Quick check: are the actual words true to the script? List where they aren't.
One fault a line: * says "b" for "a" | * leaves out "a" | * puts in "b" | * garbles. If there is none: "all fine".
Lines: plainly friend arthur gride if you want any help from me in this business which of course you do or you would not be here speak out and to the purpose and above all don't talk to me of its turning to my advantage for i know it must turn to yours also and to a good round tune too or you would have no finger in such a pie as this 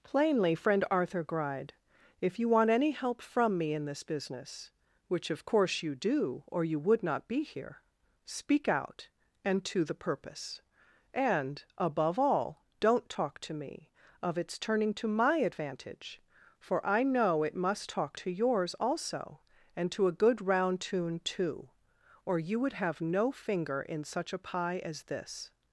* says "talk" for "turn"